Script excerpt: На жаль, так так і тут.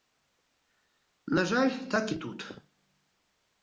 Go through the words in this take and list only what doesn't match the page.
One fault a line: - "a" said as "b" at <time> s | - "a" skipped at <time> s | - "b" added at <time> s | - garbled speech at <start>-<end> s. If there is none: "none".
- "так" skipped at 2.1 s